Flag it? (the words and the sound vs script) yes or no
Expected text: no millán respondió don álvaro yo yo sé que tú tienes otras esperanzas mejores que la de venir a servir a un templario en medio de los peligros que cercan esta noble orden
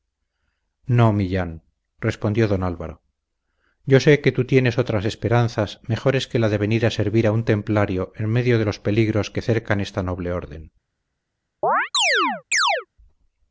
yes